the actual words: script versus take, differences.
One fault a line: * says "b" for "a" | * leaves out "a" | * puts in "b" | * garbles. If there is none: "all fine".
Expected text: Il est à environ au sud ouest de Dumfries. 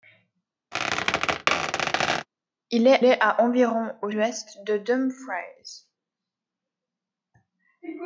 * puts in "est"
* leaves out "sud"